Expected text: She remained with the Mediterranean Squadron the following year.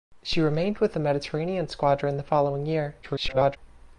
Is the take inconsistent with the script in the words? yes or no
yes